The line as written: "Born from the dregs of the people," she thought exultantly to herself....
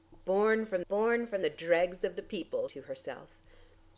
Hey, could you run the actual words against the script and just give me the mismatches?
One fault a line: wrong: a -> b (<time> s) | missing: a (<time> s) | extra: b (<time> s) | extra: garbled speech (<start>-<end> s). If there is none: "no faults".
extra: born from (0.9 s)
missing: she thought exultantly (2.7 s)